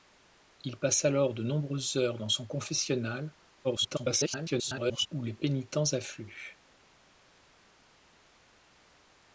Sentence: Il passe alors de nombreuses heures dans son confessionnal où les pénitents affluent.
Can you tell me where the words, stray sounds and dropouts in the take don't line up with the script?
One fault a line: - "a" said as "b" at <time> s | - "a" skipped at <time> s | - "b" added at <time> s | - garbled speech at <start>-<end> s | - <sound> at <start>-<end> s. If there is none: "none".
- garbled speech at 3.6-5.1 s